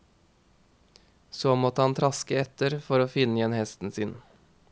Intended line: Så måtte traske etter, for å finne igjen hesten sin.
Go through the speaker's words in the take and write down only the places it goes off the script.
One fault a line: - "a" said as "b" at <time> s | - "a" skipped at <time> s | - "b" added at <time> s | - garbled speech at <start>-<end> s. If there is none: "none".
- "han" added at 1.8 s